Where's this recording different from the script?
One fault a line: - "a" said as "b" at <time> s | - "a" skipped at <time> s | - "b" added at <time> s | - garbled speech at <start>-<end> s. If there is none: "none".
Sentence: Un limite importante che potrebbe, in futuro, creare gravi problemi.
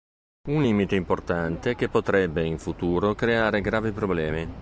none